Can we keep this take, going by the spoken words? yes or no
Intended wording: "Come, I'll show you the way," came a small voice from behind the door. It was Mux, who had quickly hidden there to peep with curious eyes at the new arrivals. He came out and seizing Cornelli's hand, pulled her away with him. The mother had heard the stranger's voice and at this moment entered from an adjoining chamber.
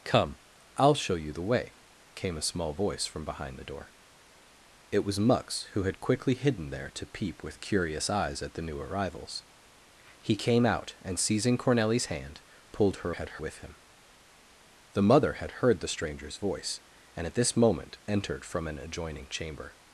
no